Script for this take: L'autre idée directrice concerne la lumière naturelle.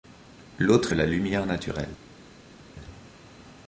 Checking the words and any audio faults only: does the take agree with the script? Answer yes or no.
no